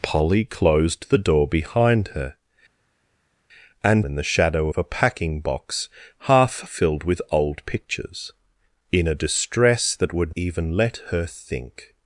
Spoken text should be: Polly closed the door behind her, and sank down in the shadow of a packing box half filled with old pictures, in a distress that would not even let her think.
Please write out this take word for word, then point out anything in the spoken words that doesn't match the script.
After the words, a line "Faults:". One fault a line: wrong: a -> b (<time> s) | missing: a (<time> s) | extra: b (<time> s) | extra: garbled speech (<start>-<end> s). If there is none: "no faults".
Polly closed the door behind her, and in the shadow of a packing box half filled with old pictures, in a distress that would even let her think.
Faults:
missing: sank down (4.1 s)
missing: not (10.3 s)